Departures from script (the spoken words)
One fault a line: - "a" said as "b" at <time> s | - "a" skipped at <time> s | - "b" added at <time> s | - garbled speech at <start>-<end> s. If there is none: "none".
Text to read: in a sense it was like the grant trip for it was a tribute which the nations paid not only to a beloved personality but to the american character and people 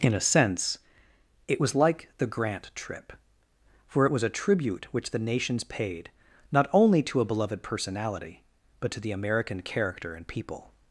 none